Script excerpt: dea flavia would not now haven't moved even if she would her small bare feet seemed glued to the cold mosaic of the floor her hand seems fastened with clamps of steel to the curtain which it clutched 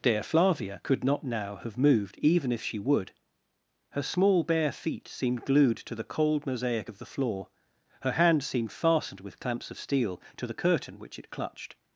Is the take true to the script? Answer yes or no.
no